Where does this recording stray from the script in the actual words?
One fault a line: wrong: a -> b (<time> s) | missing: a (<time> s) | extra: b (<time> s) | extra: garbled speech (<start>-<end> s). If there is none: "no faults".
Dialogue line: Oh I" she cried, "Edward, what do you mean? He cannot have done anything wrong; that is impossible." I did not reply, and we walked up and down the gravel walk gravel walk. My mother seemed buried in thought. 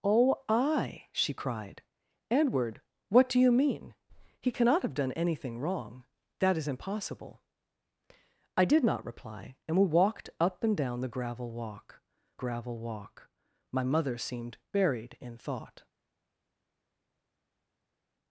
no faults